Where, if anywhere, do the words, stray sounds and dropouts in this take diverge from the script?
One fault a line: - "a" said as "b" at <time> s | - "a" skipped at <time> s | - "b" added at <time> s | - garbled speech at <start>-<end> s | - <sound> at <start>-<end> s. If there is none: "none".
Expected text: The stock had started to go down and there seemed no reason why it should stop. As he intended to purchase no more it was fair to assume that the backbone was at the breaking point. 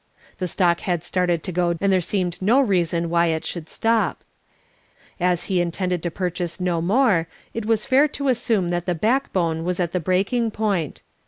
- "down" skipped at 1.7 s